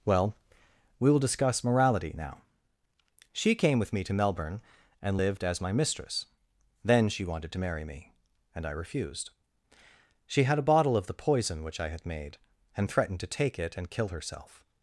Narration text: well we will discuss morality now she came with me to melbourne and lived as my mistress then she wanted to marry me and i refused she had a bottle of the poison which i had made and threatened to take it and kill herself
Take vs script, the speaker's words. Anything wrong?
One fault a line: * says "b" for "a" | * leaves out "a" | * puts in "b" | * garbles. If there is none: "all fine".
all fine